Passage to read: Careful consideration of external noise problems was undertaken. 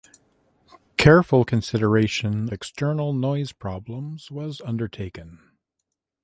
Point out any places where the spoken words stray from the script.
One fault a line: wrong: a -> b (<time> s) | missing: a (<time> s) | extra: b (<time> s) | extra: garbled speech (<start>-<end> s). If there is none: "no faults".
missing: of (2.5 s)